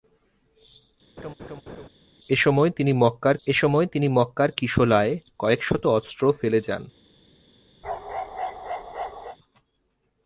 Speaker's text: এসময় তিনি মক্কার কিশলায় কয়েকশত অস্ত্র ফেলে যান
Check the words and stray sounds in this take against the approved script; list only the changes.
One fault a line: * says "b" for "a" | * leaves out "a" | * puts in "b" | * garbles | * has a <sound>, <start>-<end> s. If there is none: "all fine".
* has a laugh, 1.2-1.9 s
* puts in "এসময় তিনি মক্কার"
* has a bark, 7.8-9.4 s